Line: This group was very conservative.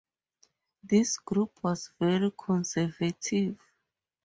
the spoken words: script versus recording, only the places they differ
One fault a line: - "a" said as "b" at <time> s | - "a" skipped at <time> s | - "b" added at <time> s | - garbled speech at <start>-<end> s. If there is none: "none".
none